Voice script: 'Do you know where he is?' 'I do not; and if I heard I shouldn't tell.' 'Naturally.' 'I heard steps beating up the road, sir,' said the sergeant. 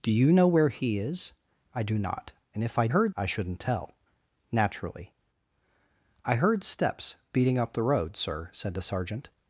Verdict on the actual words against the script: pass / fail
pass